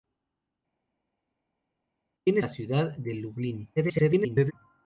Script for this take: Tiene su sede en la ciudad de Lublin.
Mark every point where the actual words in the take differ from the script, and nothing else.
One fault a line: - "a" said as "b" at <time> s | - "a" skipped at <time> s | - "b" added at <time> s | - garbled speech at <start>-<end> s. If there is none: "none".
- "su sede en" skipped at 2.4 s
- garbled speech at 3.8-4.5 s